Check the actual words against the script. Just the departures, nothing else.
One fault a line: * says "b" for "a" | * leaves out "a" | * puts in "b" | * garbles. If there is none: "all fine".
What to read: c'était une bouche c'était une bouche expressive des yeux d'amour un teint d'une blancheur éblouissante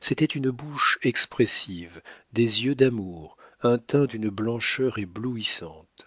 * leaves out "c'était une bouche"